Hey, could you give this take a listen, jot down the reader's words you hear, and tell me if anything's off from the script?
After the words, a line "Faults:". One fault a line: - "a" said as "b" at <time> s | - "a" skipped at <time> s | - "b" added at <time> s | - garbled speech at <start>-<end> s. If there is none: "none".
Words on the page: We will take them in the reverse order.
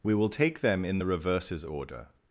We will take them in the reverses order.
Faults:
- "reverse" said as "reverses" at 1.1 s